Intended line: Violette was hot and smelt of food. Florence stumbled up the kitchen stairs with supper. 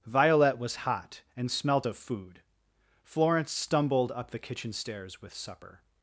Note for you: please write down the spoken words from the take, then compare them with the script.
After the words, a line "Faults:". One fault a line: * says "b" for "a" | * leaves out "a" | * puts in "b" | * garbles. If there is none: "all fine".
Violette was hot and smelt of food. Florence stumbled up the kitchen stairs with supper.
Faults:
all fine